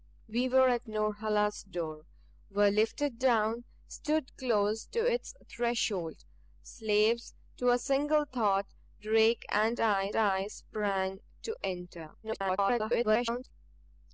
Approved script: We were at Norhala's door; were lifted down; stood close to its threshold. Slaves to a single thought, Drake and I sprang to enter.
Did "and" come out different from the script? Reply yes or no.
no